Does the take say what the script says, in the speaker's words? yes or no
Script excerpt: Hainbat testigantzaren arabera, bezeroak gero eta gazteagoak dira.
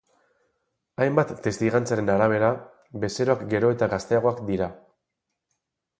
yes